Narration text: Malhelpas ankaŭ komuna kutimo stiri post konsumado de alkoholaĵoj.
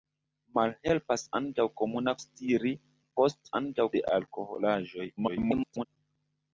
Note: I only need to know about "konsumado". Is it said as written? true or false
false